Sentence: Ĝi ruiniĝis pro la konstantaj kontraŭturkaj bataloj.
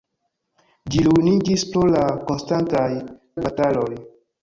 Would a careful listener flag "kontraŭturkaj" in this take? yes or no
yes